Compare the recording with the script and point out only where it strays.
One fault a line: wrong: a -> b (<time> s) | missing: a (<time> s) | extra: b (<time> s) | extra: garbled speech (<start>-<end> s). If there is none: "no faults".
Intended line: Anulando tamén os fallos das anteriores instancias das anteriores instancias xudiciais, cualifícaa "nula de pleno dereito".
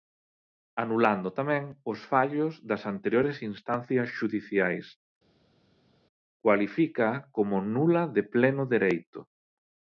missing: das anteriores instancias (4.1 s)
extra: como (7.3 s)